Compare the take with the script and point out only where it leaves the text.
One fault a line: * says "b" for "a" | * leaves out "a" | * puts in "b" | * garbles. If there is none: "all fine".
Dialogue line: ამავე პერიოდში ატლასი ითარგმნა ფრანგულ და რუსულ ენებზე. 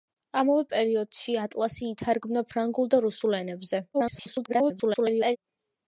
* garbles